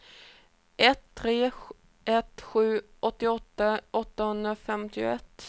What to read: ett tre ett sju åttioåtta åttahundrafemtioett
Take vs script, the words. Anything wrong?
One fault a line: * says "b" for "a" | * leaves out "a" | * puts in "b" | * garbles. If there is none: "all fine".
all fine